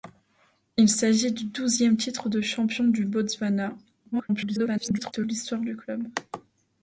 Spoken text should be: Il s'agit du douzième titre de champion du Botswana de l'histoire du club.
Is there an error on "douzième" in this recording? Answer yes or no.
no